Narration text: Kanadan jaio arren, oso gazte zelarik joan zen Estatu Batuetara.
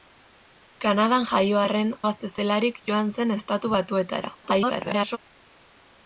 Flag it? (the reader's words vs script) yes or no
yes